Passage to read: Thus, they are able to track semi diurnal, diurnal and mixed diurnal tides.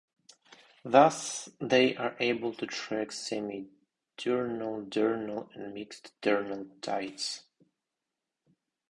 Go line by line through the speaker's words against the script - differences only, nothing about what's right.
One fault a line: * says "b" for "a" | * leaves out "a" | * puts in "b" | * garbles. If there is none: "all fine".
all fine